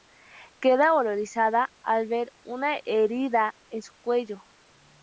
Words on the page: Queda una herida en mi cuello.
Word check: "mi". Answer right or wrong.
wrong